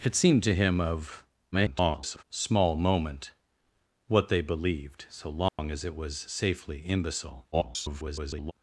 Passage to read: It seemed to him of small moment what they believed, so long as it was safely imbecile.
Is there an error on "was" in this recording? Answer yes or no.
no